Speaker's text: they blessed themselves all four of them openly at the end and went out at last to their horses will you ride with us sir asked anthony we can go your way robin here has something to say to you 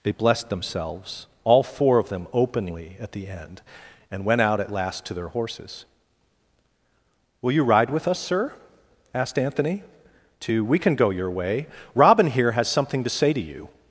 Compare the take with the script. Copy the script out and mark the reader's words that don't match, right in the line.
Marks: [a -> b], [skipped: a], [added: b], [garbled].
they blessed themselves all four of them openly at the end and went out at last to their horses will you ride with us sir asked anthony [added: to] we can go your way robin here has something to say to you